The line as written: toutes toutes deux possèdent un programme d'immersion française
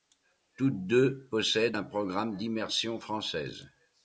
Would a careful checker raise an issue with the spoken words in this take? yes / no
yes